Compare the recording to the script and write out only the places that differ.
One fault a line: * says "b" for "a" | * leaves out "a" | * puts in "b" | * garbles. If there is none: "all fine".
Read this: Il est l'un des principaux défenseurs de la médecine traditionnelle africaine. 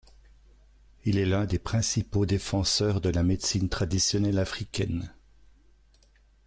all fine